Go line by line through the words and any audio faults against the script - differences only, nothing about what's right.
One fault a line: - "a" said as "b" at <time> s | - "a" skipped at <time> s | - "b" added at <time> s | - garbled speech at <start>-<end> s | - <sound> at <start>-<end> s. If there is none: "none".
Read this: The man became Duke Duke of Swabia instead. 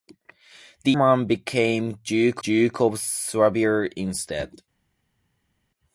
none